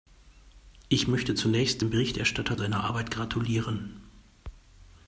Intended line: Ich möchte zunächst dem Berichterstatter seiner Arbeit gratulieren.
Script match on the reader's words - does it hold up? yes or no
yes